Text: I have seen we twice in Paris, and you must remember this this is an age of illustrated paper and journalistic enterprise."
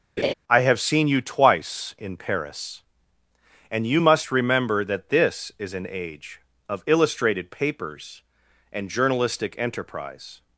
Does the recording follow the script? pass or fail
fail